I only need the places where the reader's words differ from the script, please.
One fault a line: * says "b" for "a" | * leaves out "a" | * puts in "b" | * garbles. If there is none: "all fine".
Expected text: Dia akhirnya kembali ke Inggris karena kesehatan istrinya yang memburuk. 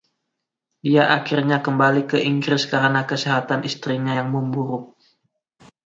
all fine